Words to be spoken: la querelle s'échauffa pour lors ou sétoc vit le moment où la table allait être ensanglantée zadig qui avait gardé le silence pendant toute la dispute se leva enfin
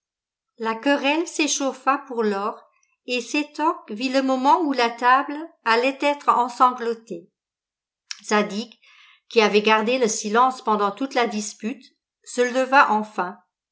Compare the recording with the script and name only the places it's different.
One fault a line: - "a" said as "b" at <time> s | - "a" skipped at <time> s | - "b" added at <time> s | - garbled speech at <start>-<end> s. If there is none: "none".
- "ou" said as "et" at 3.0 s